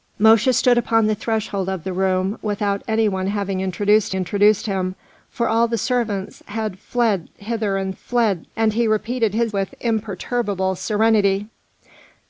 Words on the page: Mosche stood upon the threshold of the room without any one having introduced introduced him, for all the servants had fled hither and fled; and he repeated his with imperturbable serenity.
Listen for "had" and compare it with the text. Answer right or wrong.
right